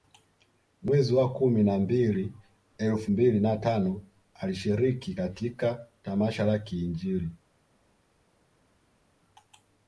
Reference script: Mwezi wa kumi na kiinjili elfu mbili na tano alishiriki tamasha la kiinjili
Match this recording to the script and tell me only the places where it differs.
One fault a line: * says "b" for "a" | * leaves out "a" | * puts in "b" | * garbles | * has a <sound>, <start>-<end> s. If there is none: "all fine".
* says "mbili" for "kiinjili"
* puts in "katika"